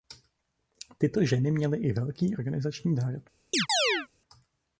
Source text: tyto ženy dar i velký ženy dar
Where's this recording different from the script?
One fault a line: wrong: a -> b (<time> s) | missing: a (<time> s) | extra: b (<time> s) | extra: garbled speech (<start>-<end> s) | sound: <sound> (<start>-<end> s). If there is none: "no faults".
wrong: dar -> měly (1.5 s)
wrong: ženy -> organizační (2.4 s)
sound: chirp (3.5-4.1 s)